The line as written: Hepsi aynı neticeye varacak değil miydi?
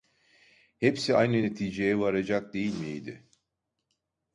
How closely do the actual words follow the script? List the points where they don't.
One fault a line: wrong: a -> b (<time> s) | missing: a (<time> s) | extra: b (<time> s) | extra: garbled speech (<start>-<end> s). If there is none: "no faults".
no faults